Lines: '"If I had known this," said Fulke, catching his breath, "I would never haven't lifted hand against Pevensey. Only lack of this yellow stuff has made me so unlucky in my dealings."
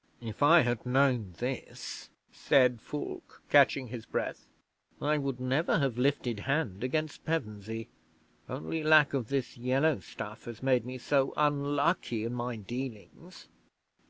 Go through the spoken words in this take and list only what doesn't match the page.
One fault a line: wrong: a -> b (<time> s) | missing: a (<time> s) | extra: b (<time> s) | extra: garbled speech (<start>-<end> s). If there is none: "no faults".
wrong: haven't -> have (5.8 s)